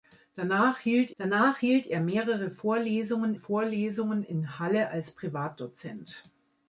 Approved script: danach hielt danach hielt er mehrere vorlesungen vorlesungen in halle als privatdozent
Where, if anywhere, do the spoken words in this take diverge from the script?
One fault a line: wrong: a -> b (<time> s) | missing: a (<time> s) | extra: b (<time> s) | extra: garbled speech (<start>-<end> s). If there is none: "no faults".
no faults